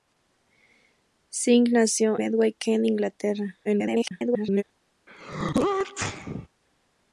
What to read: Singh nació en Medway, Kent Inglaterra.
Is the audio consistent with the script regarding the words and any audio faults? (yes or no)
no